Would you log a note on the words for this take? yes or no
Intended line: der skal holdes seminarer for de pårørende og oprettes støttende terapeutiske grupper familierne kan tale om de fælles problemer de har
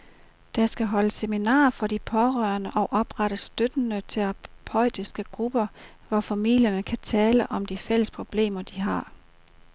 yes